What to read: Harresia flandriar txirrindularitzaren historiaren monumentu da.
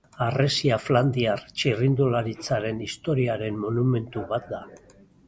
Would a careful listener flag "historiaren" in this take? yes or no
no